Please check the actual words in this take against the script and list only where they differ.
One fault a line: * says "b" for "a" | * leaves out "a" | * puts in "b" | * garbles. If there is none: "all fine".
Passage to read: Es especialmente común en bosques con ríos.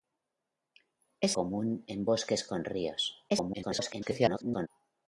* leaves out "especialmente"
* garbles